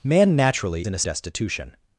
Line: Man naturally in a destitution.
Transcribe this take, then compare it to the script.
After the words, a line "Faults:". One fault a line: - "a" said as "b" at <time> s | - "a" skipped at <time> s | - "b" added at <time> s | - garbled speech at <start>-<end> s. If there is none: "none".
Man naturally in a destitution.
Faults:
none